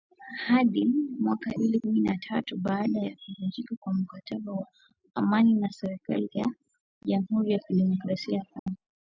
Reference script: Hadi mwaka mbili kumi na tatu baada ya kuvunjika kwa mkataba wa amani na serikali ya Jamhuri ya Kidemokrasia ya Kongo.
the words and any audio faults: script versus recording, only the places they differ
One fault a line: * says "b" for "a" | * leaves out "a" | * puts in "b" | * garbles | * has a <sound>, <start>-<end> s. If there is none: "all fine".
* has a dropout, 8.6-8.7 s